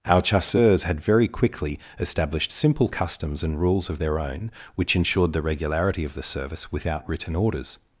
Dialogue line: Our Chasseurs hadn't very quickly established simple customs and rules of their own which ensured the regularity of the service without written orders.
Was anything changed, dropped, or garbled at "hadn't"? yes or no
yes